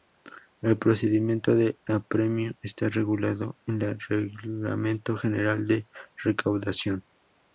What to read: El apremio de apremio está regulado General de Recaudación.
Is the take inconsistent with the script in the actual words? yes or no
yes